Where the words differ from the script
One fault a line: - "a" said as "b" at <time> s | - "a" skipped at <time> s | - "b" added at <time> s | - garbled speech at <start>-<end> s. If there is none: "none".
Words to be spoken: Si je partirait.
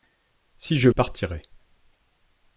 none